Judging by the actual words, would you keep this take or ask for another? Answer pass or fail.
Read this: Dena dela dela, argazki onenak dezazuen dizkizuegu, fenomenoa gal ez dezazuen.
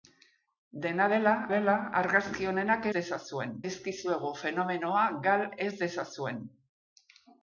pass